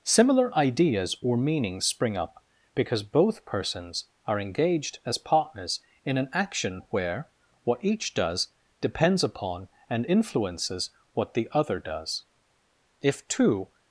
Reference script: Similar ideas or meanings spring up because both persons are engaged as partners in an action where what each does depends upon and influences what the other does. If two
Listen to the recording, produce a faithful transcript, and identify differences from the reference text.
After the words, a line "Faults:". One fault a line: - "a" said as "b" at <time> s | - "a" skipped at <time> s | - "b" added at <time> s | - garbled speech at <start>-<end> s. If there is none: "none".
Similar ideas or meanings spring up because both persons are engaged as partners in an action where what each does depends upon and influences what the other does. If two
Faults:
none